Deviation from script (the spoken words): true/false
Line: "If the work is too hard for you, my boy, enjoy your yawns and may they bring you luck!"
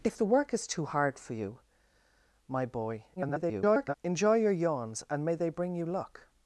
true